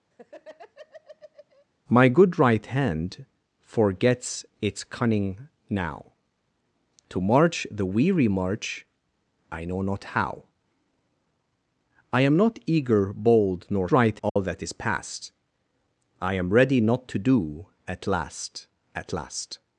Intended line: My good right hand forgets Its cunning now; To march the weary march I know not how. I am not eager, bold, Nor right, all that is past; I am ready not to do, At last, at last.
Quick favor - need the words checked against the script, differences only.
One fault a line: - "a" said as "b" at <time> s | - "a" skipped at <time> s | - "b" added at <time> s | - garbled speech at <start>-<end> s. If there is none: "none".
none